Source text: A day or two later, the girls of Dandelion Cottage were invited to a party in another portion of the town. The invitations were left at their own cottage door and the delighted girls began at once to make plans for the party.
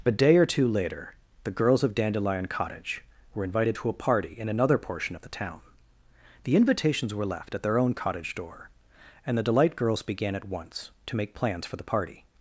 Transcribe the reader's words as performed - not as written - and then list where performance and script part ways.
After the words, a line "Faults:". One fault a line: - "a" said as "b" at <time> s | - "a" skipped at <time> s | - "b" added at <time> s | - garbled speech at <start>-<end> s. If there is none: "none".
A day or two later, the girls of Dandelion Cottage were invited to a party in another portion of the town. The invitations were left at their own cottage door and the delight girls began at once to make plans for the party.
Faults:
- "delighted" said as "delight" at 9.4 s